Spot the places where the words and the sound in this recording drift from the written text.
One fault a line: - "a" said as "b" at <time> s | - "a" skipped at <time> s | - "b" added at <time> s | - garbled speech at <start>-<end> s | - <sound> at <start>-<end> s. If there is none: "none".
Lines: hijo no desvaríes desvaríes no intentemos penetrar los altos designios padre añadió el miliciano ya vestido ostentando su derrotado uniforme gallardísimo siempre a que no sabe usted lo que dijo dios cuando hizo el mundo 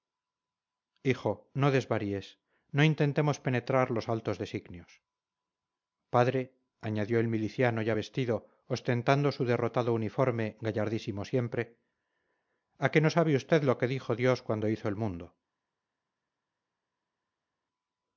- "desvaríes" skipped at 2.4 s